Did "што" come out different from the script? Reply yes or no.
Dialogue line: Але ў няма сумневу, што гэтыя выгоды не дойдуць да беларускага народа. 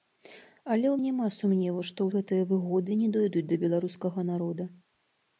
no